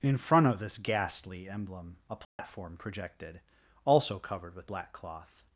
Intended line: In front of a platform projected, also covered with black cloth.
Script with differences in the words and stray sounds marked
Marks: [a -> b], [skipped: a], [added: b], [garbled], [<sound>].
In front of [added: this ghastly emblem] a platform [dropout] projected, also covered with black cloth.